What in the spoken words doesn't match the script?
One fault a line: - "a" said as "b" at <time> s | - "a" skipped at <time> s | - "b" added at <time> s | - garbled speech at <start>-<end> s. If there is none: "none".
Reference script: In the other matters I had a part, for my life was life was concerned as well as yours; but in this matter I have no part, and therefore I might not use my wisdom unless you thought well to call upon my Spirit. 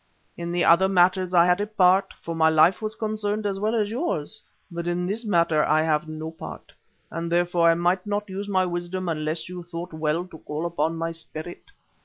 - "life was" skipped at 2.9 s